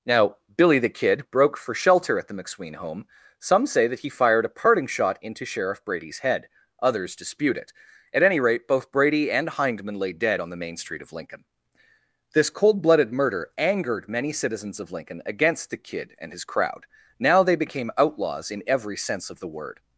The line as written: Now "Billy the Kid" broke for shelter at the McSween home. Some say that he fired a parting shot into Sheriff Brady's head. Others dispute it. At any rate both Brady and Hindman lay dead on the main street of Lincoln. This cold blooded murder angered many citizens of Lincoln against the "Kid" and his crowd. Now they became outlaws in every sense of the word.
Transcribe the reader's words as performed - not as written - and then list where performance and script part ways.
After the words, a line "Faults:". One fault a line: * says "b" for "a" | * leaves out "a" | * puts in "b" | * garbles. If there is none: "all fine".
Now "Billy the Kid" broke for shelter at the McSween home. Some say that he fired a parting shot into Sheriff Brady's head. Others dispute it. At any rate both Brady and Hindman lay dead on the main street of Lincoln. This cold blooded murder angered many citizens of Lincoln against the "Kid" and his crowd. Now they became outlaws in every sense of the word.
Faults:
all fine